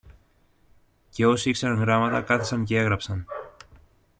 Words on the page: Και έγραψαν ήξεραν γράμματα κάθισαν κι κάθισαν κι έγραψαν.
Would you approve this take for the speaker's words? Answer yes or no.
no